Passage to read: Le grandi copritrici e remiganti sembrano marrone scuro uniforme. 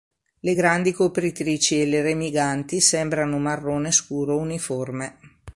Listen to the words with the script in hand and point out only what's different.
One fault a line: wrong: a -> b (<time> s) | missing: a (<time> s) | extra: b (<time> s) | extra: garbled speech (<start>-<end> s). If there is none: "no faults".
extra: le (1.9 s)